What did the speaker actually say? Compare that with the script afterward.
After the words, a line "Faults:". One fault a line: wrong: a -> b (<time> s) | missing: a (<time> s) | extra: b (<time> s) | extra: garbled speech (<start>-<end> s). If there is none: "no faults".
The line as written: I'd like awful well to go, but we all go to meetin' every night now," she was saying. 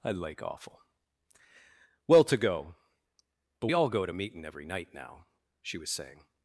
I'd like awful well to go, but all go to meetin' every night now," she was saying.
Faults:
missing: we (3.7 s)